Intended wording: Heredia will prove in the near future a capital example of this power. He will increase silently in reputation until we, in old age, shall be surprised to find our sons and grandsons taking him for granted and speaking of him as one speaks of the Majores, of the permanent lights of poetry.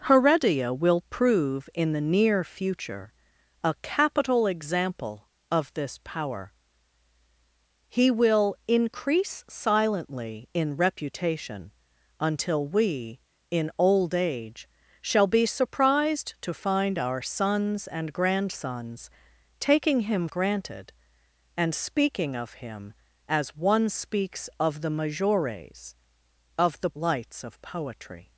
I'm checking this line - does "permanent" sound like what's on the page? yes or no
no